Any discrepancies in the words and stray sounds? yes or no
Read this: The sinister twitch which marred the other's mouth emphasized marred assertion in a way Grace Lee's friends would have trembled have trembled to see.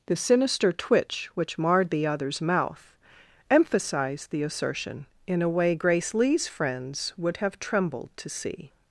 yes